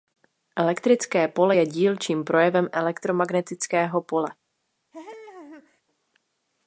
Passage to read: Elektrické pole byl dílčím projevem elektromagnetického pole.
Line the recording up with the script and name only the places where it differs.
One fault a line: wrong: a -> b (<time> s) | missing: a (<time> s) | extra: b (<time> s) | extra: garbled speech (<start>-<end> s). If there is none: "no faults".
wrong: byl -> je (1.5 s)